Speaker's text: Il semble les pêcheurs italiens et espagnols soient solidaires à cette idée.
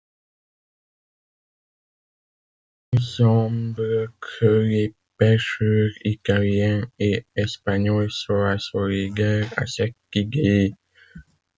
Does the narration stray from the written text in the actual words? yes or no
yes